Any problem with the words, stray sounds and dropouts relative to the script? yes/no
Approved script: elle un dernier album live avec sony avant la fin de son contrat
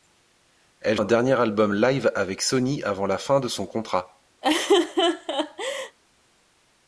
yes